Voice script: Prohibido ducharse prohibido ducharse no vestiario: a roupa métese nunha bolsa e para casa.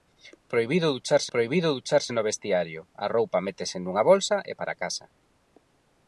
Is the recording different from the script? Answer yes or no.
no